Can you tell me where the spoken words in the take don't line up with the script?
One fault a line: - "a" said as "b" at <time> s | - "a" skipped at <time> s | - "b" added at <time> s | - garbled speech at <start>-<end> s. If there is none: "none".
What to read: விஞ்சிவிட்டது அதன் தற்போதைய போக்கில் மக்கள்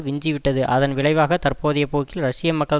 - "விளைவாக" added at 0.9 s
- "ரஷ்ய" added at 2.2 s